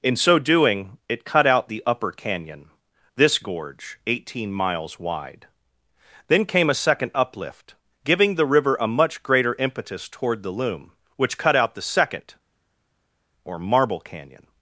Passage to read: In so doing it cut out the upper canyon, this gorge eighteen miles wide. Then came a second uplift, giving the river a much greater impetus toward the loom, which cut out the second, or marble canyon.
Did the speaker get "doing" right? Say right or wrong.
right